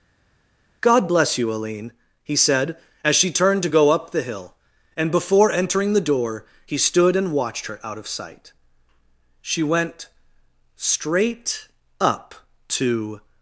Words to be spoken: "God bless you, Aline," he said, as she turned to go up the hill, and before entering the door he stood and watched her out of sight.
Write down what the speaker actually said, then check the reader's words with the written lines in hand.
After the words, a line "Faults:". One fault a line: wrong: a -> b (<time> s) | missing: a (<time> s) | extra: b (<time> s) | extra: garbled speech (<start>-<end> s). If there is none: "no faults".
"God bless you, Aline," he said, as she turned to go up the hill, and before entering the door he stood and watched her out of sight. She went straight up to
Faults:
extra: She went straight up to (9.4 s)